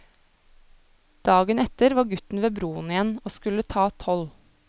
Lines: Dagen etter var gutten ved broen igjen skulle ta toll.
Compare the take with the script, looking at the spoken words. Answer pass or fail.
fail